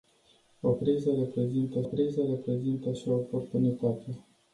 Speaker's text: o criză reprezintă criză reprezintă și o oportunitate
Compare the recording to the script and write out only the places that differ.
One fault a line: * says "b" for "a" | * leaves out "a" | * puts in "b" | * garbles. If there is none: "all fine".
all fine